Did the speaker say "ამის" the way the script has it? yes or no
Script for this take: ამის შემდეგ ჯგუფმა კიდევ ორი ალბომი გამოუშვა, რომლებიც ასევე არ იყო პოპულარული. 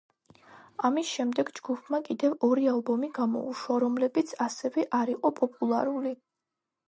yes